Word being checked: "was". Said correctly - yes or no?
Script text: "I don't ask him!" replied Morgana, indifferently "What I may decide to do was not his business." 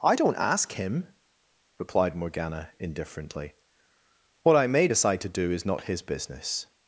no